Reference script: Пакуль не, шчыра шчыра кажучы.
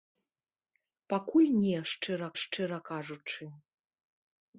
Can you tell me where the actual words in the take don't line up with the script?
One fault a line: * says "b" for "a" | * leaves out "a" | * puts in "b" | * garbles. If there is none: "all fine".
all fine